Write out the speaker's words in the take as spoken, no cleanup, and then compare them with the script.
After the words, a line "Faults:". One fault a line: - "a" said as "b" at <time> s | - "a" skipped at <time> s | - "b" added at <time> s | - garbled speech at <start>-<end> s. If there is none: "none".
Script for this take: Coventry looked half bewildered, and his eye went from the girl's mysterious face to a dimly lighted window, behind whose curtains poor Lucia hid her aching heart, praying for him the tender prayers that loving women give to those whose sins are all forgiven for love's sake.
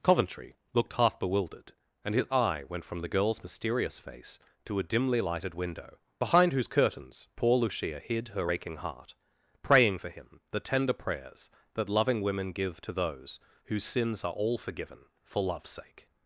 Coventry looked half bewildered, and his eye went from the girl's mysterious face to a dimly lighted window, behind whose curtains poor Lucia hid her aching heart, praying for him the tender prayers that loving women give to those whose sins are all forgiven for love's sake.
Faults:
none